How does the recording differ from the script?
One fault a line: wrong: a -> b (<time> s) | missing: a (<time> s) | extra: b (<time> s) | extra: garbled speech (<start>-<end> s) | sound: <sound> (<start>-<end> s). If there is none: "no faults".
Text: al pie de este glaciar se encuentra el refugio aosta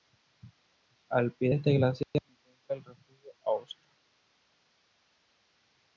no faults